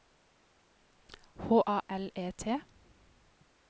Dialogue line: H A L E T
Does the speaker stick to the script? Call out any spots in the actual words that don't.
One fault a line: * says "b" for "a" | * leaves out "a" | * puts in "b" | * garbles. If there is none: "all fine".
all fine